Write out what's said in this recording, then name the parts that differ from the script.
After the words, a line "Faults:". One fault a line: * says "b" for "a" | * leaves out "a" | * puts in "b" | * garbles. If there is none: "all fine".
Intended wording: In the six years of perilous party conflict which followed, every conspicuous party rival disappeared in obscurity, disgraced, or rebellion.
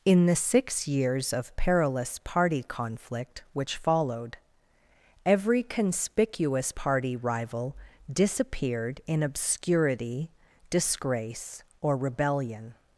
In the six years of perilous party conflict which followed, every conspicuous party rival disappeared in obscurity, disgrace, or rebellion.
Faults:
* says "disgrace" for "disgraced"